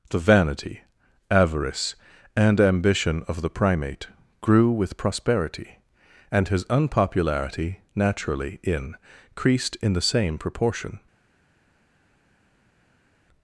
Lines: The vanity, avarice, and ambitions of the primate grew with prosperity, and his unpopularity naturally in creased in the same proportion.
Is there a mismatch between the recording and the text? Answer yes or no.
yes